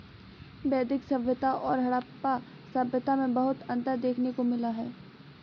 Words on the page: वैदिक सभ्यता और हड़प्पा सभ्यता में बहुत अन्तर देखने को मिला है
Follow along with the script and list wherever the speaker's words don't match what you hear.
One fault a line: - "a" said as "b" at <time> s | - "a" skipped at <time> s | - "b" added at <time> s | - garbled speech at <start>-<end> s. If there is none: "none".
none